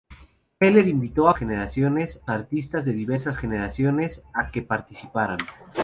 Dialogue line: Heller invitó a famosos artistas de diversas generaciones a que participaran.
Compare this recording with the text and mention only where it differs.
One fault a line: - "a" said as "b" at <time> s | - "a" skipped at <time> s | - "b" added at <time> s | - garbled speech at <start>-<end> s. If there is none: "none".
- "famosos" said as "generaciones" at 1.3 s